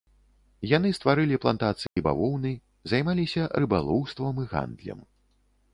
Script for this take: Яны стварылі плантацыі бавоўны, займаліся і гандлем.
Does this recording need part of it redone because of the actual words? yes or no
yes